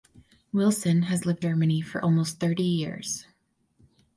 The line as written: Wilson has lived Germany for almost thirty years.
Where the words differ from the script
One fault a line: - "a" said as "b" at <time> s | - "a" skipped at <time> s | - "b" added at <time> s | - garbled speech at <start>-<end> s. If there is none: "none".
none